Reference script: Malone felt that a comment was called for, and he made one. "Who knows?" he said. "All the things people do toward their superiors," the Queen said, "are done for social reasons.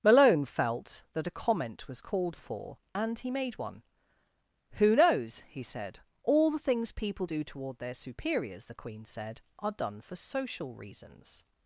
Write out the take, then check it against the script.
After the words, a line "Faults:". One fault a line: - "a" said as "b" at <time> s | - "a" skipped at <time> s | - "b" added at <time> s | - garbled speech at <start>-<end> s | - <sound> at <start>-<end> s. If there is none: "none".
Malone felt that a comment was called for, and he made one. "Who knows?" he said. "All the things people do toward their superiors," the Queen said, "are done for social reasons.
Faults:
none